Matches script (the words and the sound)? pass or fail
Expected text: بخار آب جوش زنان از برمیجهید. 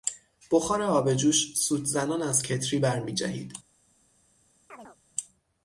fail